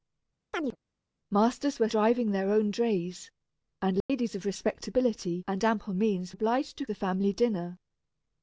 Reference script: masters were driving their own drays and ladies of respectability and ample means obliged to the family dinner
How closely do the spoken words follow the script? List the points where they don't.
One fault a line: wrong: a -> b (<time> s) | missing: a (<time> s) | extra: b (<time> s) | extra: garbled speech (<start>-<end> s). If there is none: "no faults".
no faults